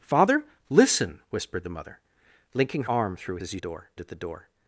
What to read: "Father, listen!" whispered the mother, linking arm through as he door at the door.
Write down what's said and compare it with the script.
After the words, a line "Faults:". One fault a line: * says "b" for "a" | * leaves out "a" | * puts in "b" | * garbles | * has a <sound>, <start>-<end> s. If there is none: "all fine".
"Father, listen!" whispered the mother, linking arm through as he door at the door.
Faults:
all fine